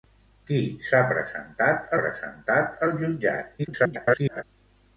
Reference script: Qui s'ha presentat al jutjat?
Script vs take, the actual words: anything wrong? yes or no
yes